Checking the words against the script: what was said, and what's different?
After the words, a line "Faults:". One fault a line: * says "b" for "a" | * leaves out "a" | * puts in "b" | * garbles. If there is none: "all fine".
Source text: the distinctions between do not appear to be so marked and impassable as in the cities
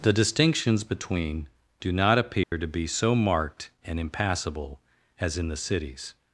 the distinctions between do not appear to be so marked and impassable as in the cities
Faults:
all fine